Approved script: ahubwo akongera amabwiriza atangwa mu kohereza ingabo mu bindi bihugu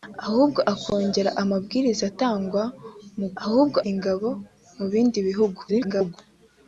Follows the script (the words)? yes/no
no